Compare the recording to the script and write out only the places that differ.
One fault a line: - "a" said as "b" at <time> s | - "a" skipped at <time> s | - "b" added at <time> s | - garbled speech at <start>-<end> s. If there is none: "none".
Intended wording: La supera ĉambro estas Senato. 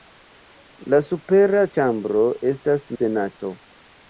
none